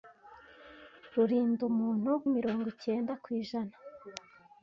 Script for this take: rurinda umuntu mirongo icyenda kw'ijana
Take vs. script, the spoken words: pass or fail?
pass